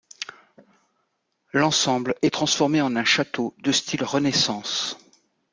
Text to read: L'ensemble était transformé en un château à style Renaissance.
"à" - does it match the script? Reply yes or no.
no